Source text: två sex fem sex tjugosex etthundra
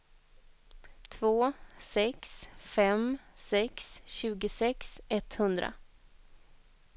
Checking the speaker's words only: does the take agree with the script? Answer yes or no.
yes